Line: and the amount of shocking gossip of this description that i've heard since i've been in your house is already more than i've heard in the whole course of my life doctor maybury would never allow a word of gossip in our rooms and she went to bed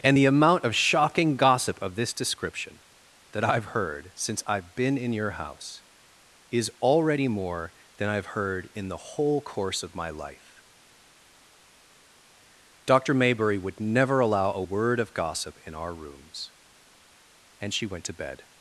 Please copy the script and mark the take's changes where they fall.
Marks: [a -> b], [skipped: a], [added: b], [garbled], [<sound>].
and the amount of shocking gossip of this description that i've heard since i've been in your house is already more than i've heard in the whole course of my life doctor maybury would never allow a word of gossip in our rooms and she went to bed